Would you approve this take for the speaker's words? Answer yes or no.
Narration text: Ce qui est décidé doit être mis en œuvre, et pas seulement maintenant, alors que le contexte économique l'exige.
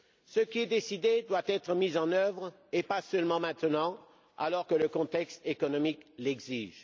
yes